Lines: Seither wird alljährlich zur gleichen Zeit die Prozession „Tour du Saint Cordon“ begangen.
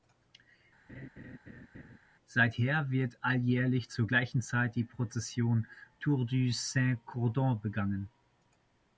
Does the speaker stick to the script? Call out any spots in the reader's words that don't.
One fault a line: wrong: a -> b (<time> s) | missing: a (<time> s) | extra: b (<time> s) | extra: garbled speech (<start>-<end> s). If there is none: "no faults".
no faults